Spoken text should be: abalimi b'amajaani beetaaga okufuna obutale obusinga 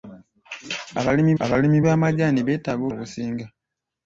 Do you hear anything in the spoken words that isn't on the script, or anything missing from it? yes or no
yes